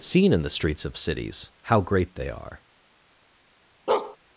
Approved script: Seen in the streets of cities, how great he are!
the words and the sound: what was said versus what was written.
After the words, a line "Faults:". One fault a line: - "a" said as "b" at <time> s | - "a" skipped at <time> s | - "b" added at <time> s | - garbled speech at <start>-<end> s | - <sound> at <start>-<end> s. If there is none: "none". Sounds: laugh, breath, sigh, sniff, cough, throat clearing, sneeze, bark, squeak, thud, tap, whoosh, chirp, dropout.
Seen in the streets of cities, how great they are!
Faults:
- "he" said as "they" at 2.1 s
- bark at 3.9-4.2 s